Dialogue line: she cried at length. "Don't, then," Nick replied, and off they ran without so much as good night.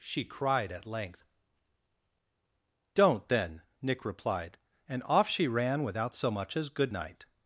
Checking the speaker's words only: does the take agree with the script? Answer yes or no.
no